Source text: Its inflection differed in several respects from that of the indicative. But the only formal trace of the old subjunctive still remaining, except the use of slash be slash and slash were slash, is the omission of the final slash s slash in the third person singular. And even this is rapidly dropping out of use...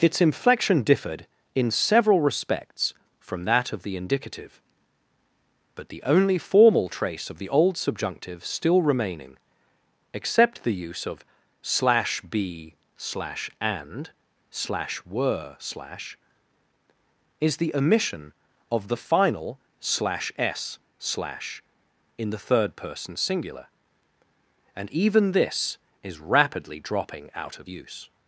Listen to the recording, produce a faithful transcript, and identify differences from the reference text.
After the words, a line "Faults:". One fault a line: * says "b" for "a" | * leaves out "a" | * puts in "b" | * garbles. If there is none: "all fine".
Its inflection differed in several respects from that of the indicative. But the only formal trace of the old subjunctive still remaining, except the use of slash be slash and slash were slash, is the omission of the final slash s slash in the third person singular. And even this is rapidly dropping out of use...
Faults:
all fine